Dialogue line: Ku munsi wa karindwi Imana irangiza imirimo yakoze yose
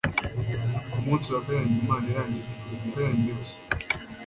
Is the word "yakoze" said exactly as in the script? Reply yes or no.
no